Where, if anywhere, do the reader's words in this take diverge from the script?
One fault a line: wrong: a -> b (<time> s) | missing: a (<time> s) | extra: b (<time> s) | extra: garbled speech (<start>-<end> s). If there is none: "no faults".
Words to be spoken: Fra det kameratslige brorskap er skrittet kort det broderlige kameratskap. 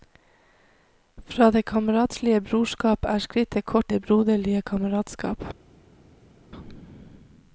no faults